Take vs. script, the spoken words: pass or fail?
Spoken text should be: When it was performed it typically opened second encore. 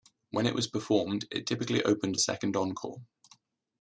pass